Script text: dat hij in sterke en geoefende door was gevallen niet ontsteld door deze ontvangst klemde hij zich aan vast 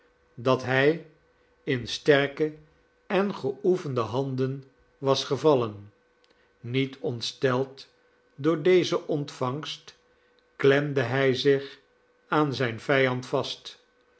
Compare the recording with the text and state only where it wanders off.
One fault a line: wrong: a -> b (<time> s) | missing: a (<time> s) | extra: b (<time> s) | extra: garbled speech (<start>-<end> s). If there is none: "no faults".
wrong: door -> handen (4.0 s)
extra: zijn vijand (12.5 s)